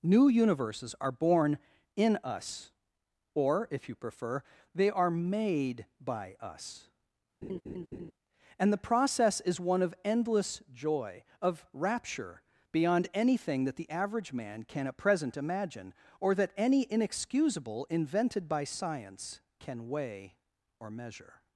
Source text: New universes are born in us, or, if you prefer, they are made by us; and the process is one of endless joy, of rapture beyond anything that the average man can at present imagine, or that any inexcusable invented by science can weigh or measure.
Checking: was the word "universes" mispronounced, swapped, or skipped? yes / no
no